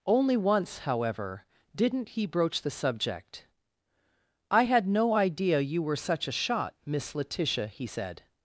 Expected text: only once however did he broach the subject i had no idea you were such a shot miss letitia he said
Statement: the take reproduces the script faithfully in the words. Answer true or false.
false